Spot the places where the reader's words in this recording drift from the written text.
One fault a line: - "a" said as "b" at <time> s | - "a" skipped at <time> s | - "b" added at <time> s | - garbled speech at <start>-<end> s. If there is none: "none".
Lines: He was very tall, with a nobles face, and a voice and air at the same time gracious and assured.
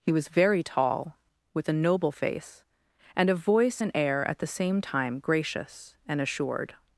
- "nobles" said as "noble" at 1.7 s